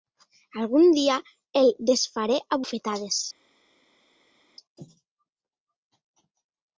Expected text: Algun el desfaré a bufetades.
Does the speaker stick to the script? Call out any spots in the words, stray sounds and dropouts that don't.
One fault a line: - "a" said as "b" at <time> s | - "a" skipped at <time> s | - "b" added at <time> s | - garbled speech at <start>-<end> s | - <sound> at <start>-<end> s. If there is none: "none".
- "dia" added at 0.9 s